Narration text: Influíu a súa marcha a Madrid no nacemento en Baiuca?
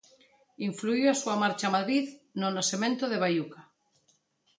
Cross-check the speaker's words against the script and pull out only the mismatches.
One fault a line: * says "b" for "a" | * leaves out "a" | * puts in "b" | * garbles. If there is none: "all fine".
* says "de" for "en"